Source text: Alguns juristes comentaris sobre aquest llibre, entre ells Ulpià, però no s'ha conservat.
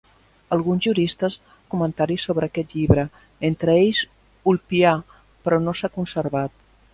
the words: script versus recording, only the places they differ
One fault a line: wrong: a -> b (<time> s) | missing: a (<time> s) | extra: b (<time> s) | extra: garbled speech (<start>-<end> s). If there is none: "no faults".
no faults